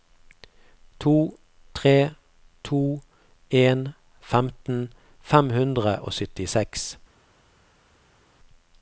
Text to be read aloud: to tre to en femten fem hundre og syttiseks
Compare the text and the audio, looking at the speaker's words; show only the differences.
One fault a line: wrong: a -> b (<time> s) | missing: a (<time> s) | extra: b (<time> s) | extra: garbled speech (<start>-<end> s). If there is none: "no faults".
no faults